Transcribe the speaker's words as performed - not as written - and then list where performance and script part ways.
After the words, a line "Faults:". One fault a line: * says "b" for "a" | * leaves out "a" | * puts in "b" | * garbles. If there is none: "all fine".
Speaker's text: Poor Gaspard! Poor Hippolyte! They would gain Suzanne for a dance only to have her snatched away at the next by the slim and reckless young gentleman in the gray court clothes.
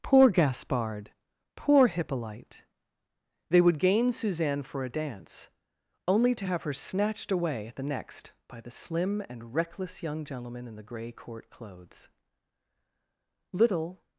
Poor Gaspard! Poor Hippolyte! They would gain Suzanne for a dance only to have her snatched away at the next by the slim and reckless young gentleman in the gray court clothes. Little
Faults:
* puts in "Little"